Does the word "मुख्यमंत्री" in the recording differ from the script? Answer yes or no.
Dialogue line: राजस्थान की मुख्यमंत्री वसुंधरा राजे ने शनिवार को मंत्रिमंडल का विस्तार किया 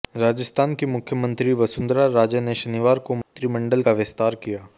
no